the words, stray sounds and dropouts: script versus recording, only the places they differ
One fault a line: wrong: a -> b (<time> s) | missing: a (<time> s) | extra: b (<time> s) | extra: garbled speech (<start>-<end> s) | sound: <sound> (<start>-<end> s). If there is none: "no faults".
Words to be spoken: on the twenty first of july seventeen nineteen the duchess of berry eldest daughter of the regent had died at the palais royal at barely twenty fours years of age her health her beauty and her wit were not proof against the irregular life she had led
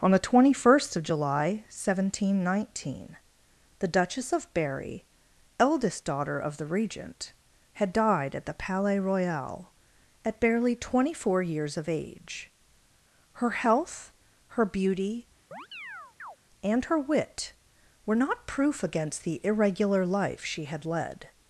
wrong: fours -> four (11.1 s)
sound: chirp (15.5-16.4 s)